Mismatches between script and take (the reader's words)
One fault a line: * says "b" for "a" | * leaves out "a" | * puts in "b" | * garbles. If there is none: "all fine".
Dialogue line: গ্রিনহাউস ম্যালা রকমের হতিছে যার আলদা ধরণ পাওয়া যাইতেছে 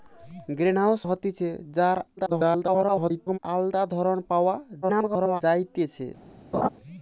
* leaves out "ম্যালা রকমের"
* garbles
* garbles